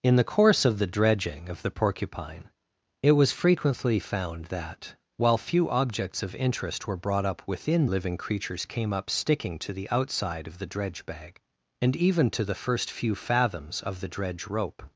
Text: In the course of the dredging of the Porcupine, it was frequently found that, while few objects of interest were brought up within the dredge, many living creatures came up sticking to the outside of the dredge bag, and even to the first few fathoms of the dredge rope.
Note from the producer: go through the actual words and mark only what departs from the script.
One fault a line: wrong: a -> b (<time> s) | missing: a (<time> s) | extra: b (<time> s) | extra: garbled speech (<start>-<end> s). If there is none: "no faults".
missing: the dredge many (7.8 s)